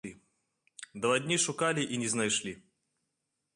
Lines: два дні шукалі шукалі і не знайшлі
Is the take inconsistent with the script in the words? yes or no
yes